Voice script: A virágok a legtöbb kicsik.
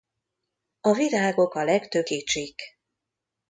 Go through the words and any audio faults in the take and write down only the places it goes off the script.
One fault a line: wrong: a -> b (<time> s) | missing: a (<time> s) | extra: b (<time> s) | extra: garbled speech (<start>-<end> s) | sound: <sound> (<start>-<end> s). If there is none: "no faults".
no faults